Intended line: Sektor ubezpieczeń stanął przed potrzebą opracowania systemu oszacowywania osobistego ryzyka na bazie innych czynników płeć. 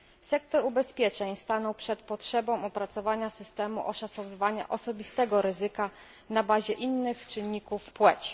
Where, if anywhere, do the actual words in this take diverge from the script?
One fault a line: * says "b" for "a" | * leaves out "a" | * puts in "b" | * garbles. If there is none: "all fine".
all fine